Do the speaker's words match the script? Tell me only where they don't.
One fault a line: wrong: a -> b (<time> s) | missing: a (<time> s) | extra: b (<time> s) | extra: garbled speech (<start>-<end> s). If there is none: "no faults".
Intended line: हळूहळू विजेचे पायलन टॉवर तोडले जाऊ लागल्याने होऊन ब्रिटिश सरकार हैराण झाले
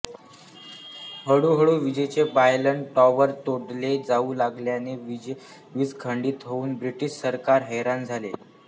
extra: वीज खंडित (5.8 s)